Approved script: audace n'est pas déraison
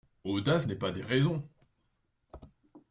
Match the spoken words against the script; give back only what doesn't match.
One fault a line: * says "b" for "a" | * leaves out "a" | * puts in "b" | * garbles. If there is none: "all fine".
all fine